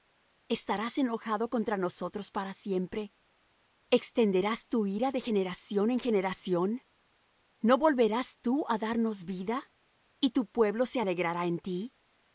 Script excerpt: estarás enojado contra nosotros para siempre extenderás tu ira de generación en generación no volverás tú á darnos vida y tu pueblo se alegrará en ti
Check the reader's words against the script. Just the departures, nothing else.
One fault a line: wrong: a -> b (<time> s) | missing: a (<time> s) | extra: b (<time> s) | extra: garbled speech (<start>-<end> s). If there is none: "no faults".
no faults